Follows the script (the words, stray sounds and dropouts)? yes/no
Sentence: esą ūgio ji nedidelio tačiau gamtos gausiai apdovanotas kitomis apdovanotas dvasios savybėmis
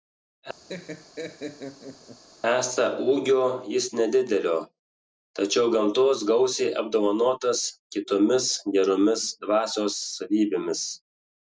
no